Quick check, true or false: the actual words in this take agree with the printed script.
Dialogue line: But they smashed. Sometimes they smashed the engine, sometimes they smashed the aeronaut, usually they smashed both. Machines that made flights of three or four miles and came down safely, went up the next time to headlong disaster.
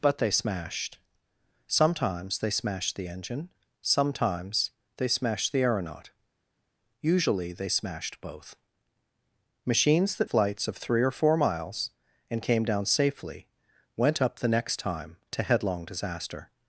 false